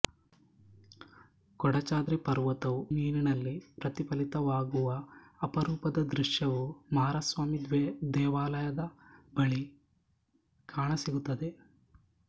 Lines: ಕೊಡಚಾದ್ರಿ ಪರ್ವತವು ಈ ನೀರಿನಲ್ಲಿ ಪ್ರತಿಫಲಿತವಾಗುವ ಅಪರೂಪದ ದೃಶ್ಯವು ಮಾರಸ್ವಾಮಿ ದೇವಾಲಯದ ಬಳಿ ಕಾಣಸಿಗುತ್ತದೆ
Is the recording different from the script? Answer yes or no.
yes